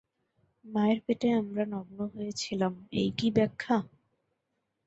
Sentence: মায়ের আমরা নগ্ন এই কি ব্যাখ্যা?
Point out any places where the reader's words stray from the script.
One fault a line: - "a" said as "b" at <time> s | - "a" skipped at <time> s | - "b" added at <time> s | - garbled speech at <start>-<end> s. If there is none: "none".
- "পেটে" added at 1.0 s
- "হয়ে ছিলাম" added at 2.1 s